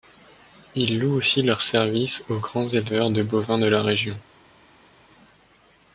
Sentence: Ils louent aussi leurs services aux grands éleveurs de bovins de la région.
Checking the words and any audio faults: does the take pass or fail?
pass